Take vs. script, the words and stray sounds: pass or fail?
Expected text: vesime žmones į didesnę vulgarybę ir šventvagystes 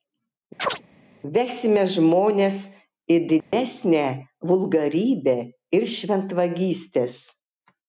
fail